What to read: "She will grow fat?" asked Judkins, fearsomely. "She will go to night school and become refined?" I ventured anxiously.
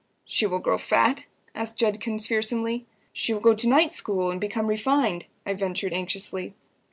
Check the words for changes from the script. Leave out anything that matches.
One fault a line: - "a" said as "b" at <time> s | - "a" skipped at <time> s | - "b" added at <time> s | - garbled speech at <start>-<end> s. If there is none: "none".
none